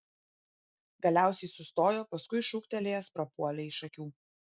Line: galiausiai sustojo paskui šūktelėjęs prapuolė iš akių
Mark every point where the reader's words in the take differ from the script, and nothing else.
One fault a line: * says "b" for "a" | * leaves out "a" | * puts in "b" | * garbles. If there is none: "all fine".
all fine